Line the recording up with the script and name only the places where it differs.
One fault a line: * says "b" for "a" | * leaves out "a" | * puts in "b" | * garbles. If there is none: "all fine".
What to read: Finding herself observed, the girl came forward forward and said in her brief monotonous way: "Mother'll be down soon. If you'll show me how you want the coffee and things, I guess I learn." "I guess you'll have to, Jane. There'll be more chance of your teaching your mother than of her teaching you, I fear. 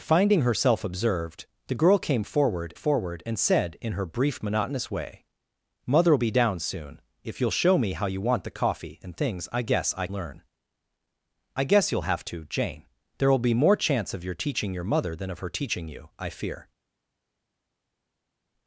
all fine